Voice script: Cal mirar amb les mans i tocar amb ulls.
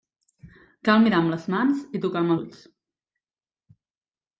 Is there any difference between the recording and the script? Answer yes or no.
no